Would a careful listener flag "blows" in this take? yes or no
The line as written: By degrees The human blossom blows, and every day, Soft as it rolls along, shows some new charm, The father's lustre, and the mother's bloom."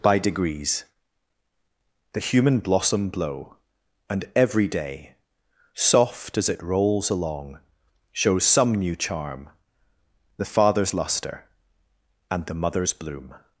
yes